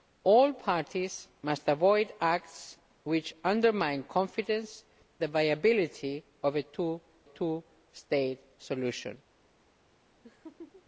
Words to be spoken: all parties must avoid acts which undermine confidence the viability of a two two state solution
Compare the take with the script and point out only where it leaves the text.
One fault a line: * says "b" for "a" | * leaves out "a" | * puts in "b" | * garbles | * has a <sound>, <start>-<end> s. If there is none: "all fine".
* has a laugh, 10.2-10.9 s